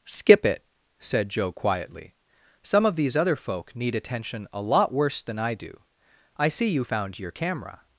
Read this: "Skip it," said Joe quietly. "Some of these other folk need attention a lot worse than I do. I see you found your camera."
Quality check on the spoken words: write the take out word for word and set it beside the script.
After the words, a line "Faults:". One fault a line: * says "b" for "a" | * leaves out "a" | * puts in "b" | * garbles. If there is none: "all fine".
"Skip it," said Joe quietly. "Some of these other folk need attention a lot worse than I do. I see you found your camera."
Faults:
all fine